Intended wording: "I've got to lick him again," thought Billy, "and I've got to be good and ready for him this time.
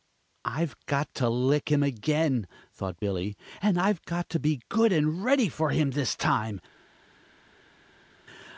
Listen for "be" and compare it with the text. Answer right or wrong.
right